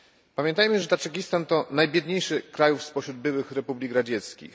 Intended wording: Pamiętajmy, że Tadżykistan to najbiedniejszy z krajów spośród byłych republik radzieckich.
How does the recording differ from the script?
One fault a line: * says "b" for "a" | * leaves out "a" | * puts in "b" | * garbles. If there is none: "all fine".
all fine